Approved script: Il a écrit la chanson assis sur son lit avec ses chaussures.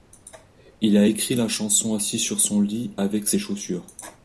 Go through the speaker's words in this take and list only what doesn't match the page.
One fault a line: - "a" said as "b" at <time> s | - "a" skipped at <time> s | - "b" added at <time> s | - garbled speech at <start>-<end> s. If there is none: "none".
none